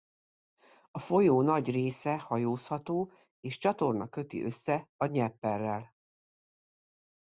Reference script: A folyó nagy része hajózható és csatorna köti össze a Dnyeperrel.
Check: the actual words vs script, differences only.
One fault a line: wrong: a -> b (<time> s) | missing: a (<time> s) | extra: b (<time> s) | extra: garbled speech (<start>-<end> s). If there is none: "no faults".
no faults